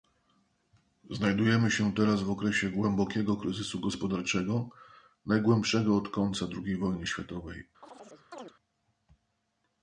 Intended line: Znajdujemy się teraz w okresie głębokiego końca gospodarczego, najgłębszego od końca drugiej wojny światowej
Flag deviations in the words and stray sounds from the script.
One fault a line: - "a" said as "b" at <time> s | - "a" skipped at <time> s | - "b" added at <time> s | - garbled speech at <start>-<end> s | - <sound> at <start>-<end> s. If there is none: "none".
- "końca" said as "kryzysu" at 3.4 s
- chirp at 7.8-8.5 s